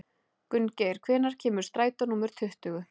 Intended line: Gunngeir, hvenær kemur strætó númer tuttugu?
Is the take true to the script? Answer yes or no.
yes